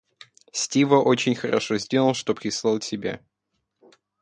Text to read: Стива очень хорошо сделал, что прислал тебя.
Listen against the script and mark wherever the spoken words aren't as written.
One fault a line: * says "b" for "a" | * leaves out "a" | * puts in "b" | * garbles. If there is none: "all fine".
all fine